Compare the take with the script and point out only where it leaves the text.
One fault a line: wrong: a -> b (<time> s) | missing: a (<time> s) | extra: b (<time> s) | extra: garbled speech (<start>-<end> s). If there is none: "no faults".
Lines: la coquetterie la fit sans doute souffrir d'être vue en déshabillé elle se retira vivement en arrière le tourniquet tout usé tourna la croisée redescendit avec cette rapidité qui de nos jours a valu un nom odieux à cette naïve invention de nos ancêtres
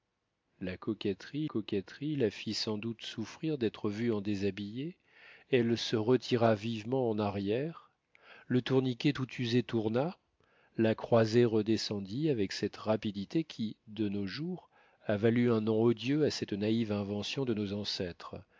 extra: coquetterie (1.4 s)